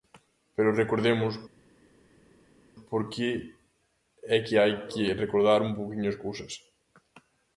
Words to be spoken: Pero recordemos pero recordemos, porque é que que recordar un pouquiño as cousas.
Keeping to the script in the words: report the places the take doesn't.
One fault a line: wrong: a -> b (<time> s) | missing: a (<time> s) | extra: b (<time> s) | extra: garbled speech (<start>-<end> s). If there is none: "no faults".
missing: pero recordemos (1.3 s)
extra: hai (4.6 s)